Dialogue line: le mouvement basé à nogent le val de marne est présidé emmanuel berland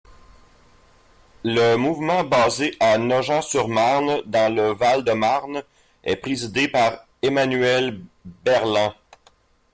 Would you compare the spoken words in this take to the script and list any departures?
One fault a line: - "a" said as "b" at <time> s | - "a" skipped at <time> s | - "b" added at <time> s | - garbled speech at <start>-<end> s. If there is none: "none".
- "sur marne dans" added at 3.4 s
- "par" added at 6.7 s